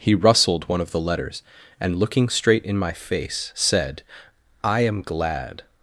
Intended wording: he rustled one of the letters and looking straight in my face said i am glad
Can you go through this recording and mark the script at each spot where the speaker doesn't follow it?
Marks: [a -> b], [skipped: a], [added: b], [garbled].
he rustled one of the letters and looking straight in my face said i am glad